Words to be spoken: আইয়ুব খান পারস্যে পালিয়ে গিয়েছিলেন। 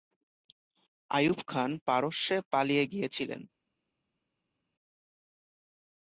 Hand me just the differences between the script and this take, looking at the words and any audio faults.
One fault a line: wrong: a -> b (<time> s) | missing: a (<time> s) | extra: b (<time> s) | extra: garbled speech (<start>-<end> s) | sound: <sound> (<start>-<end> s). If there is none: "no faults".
no faults